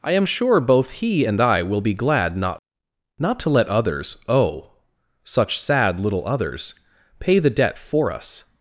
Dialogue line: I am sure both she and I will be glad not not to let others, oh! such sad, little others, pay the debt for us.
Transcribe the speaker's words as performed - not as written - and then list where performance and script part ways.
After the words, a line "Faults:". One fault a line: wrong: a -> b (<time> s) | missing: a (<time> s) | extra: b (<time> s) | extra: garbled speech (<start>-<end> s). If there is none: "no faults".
I am sure both he and I will be glad not not to let others, oh! such sad, little others, pay the debt for us.
Faults:
wrong: she -> he (0.9 s)